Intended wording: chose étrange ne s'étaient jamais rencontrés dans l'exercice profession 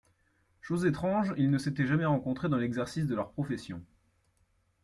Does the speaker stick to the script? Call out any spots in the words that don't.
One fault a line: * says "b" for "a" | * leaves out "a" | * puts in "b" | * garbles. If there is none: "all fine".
* puts in "ils"
* puts in "de leur"